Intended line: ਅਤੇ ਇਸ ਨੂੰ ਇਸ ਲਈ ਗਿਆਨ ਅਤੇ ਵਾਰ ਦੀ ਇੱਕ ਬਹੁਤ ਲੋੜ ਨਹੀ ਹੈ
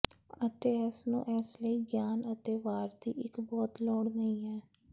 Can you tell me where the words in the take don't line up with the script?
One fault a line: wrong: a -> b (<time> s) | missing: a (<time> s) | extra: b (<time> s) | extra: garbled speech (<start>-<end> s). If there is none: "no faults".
no faults